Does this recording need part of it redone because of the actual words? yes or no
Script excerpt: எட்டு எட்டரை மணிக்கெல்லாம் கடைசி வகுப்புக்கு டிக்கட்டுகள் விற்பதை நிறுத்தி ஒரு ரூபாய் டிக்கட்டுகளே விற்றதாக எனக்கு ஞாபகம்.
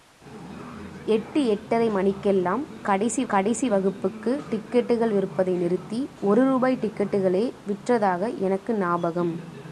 yes